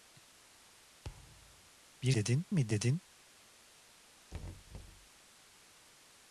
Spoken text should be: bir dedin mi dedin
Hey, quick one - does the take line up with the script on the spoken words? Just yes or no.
yes